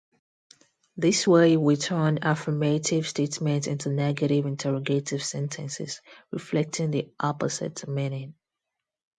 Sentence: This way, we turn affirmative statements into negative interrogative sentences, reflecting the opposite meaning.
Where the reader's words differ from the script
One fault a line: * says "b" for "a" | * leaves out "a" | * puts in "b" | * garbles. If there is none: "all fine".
all fine